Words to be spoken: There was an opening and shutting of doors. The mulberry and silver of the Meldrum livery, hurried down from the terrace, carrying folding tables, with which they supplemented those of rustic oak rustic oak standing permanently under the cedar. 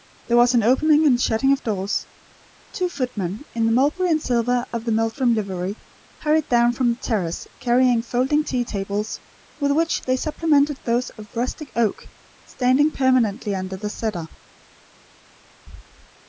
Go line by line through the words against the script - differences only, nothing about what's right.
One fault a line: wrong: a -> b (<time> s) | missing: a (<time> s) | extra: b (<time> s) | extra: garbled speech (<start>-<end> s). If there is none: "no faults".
extra: Two footmen in (2.7 s)
extra: tea (8.4 s)
missing: rustic oak (12.0 s)